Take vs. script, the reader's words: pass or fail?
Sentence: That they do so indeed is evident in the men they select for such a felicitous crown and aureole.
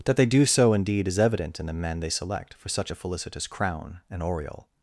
pass